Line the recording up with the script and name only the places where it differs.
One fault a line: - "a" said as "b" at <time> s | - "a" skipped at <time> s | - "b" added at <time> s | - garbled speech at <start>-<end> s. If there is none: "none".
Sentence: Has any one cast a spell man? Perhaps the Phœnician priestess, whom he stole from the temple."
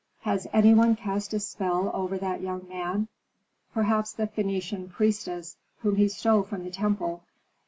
- "over that young" added at 1.9 s